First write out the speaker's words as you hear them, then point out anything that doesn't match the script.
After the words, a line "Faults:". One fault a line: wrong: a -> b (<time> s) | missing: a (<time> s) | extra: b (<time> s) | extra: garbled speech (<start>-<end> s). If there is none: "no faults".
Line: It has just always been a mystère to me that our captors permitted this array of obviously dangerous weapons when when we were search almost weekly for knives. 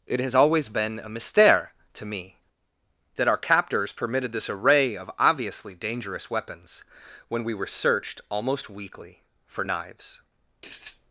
It has always been a mystère to me that our captors permitted this array of obviously dangerous weapons when we were searched almost weekly for knives.
Faults:
missing: just (0.3 s)
missing: when (7.4 s)
wrong: search -> searched (7.7 s)